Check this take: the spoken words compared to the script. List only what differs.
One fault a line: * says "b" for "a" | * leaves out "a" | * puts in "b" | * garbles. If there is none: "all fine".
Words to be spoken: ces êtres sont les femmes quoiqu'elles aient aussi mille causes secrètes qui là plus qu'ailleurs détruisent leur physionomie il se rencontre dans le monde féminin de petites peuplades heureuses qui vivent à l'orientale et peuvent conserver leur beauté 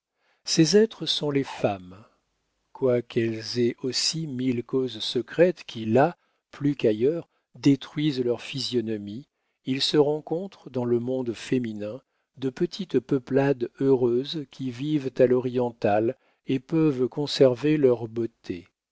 all fine